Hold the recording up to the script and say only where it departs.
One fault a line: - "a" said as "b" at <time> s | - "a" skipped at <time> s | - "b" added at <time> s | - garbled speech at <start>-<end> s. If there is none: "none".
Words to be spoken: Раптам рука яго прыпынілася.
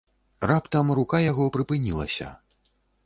none